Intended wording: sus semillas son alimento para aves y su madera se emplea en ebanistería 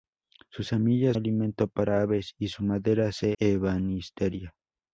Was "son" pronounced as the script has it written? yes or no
no